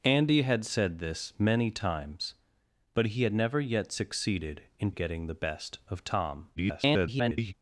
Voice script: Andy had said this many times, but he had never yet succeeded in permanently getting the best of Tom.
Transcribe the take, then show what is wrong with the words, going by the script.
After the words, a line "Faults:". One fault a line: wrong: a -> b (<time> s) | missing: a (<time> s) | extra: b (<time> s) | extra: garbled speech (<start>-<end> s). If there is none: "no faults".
Andy had said this many times, but he had never yet succeeded in getting the best of Tom. [garbled]
Faults:
missing: permanently (4.9 s)
extra: garbled speech (6.6-7.5 s)